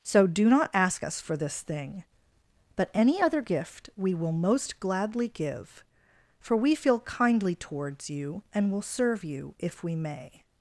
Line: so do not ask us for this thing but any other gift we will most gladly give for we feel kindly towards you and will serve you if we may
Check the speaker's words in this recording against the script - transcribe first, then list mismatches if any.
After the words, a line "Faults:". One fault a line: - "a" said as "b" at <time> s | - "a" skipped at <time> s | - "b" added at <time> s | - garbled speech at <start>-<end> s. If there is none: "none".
so do not ask us for this thing but any other gift we will most gladly give for we feel kindly towards you and will serve you if we may
Faults:
none